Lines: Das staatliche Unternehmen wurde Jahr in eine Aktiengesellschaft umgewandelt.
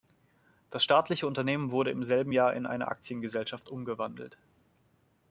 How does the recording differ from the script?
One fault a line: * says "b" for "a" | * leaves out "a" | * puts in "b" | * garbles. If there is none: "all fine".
* puts in "im selben"